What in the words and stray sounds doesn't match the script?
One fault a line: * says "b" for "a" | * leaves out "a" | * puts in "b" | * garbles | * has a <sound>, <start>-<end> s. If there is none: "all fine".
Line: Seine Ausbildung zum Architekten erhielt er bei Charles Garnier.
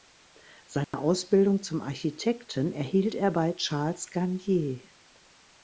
* has a dropout, 0.8-0.9 s